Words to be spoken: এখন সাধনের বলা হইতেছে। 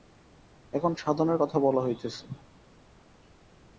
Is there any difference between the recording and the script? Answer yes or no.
yes